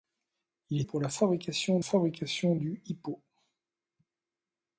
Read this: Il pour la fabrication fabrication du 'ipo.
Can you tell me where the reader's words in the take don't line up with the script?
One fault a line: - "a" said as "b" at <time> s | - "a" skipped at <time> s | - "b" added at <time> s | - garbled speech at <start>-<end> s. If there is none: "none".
none